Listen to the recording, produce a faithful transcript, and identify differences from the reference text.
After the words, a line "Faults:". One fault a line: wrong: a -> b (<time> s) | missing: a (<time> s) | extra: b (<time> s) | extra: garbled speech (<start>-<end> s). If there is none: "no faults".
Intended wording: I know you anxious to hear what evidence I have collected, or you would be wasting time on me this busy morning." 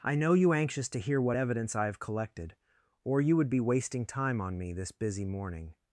I know you anxious to hear what evidence I have collected, or you would be wasting time on me this busy morning."
Faults:
no faults